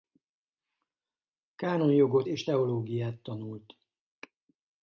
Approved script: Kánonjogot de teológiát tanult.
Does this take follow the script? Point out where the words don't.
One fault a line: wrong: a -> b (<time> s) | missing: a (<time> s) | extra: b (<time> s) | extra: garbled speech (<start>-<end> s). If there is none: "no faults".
wrong: de -> és (2.2 s)